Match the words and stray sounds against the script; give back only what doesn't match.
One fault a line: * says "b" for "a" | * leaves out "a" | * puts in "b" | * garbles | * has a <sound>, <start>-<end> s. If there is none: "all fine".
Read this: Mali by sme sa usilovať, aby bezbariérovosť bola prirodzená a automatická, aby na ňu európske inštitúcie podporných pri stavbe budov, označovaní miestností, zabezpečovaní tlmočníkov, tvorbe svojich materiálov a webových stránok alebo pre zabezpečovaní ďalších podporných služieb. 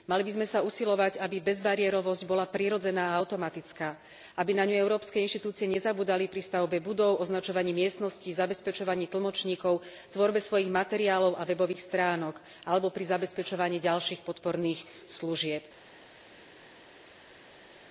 * says "nezabúdali" for "podporných"
* says "pri" for "pre"